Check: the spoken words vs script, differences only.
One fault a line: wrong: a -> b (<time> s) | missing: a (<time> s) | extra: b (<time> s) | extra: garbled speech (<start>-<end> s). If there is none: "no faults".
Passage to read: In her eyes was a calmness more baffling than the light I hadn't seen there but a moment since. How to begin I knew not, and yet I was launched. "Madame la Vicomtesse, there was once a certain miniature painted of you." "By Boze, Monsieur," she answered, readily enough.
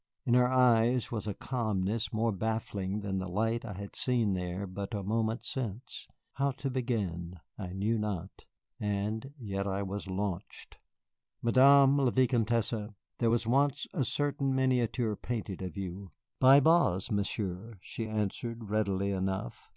wrong: hadn't -> had (3.7 s)